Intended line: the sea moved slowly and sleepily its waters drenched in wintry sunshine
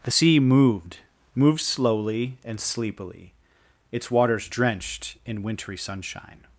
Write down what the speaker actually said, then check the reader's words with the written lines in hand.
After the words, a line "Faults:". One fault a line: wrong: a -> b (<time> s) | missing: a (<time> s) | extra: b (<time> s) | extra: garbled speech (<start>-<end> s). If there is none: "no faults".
the sea moved moved slowly and sleepily its waters drenched in wintry sunshine
Faults:
extra: moved (1.3 s)